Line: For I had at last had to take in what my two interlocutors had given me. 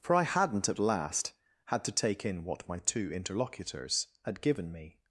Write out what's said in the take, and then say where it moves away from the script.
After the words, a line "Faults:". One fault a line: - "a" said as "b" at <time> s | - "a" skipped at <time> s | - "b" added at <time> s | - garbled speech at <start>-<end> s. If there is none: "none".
For I hadn't at last had to take in what my two interlocutors had given me.
Faults:
- "had" said as "hadn't" at 0.2 s